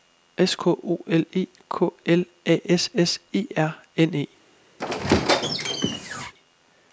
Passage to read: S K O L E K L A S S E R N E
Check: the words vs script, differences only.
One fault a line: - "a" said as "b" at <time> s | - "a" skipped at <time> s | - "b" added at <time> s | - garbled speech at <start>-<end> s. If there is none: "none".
none